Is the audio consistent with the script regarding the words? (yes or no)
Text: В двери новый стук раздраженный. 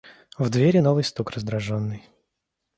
yes